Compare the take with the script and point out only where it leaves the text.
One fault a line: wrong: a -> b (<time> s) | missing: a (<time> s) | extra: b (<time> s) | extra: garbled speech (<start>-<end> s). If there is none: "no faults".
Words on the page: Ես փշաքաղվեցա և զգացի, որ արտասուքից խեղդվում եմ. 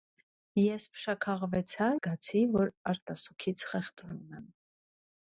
missing: և (1.9 s)